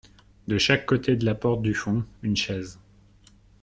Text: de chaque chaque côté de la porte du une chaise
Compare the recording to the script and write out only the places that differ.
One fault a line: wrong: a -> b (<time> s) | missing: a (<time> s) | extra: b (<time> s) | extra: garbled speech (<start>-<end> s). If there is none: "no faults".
missing: chaque (0.9 s)
extra: fond (1.8 s)